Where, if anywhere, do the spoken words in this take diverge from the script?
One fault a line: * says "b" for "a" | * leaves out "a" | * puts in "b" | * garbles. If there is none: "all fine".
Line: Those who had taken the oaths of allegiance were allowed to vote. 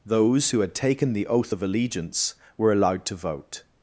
* says "oath" for "oaths"